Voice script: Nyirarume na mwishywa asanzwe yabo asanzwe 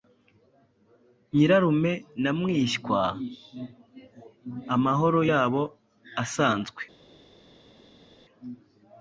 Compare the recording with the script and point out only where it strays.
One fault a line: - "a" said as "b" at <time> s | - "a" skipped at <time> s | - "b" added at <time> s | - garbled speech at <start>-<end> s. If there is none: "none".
- "asanzwe" said as "amahoro" at 4.8 s